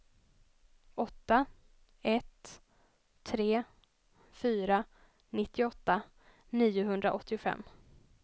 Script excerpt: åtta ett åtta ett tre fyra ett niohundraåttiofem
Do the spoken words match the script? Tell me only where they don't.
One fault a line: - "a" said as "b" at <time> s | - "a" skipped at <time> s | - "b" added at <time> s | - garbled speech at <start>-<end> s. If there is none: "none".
- "åtta ett" skipped at 2.6 s
- "ett" said as "nittioåtta" at 5.3 s